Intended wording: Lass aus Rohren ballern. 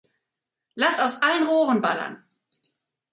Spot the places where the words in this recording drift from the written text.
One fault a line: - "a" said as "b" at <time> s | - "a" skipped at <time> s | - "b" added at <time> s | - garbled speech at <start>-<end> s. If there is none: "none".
- "allen" added at 1.2 s